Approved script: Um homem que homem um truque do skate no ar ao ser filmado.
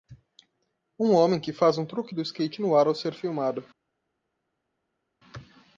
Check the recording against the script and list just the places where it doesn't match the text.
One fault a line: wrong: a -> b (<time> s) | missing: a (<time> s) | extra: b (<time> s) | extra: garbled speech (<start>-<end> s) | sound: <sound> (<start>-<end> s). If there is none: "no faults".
wrong: homem -> faz (1.5 s)